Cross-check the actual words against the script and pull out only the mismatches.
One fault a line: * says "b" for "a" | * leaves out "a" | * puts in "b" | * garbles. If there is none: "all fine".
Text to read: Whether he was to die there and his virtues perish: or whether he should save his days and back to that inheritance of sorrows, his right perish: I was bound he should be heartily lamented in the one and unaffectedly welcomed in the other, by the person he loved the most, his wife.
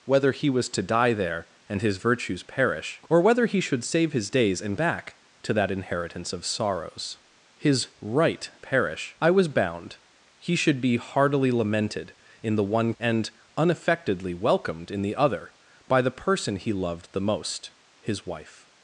all fine